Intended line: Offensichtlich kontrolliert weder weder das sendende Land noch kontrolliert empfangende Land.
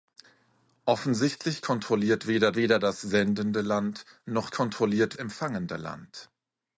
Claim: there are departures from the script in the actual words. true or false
false